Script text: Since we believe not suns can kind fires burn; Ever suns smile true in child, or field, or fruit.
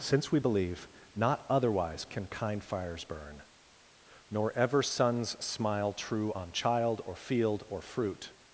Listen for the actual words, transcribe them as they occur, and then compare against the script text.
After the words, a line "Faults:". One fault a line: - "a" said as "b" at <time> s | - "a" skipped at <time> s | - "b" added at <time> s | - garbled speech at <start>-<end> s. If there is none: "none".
Since we believe not otherwise can kind fires burn; Nor ever suns smile true on child, or field, or fruit.
Faults:
- "suns" said as "otherwise" at 1.5 s
- "Nor" added at 4.3 s
- "in" said as "on" at 6.3 s